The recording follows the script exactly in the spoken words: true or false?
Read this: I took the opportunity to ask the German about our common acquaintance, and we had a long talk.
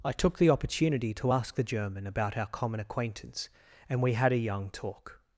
false